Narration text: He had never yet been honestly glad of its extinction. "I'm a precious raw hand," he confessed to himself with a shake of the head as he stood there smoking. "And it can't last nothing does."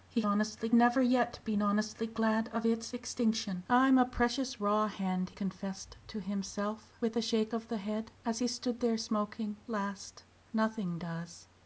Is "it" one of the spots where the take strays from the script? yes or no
yes